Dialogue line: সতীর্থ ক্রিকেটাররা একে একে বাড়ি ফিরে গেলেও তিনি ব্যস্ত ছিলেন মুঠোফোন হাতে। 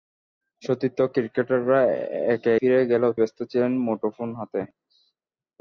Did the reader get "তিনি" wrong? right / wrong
wrong